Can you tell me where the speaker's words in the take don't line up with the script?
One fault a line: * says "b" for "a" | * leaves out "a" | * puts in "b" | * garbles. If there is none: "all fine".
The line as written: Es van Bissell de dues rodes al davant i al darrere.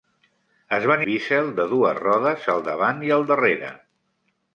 all fine